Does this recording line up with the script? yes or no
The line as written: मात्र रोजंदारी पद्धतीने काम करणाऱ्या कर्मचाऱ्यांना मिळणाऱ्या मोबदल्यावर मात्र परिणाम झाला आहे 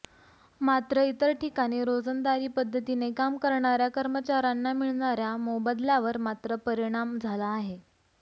no